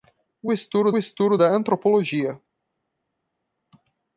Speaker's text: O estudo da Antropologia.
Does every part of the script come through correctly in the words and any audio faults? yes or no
no